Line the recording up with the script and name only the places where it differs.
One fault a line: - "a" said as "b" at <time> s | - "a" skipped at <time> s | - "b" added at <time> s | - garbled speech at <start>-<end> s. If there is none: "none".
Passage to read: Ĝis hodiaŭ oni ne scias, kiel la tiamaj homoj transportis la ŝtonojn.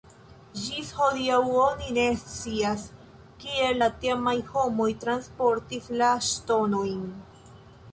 none